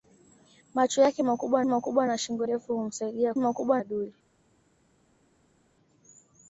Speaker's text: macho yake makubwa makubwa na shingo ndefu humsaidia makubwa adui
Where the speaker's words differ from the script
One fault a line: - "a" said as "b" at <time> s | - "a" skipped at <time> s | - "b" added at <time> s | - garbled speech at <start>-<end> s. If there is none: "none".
none